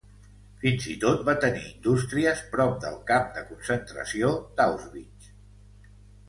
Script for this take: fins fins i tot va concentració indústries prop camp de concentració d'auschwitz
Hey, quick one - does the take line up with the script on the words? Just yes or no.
no